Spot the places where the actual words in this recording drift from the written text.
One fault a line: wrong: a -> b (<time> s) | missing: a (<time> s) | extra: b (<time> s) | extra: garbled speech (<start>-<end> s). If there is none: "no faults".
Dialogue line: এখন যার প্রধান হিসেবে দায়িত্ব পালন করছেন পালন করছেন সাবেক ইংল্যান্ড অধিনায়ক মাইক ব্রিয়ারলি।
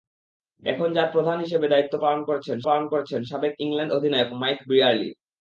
no faults